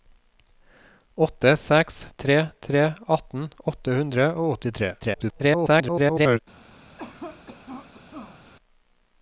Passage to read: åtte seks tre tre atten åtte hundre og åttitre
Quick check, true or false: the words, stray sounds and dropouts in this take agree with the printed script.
false